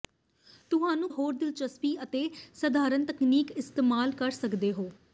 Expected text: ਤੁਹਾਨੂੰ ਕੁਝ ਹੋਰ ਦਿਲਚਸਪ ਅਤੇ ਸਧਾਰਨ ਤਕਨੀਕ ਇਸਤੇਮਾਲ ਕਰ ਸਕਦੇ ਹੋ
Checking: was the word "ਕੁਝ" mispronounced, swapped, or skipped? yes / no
yes